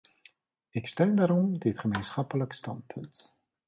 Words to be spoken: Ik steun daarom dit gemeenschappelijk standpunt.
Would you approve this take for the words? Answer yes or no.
yes